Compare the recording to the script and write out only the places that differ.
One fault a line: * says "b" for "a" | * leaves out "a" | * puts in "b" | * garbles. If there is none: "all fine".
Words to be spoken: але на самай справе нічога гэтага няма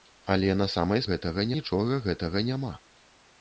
* says "гэтага" for "справе"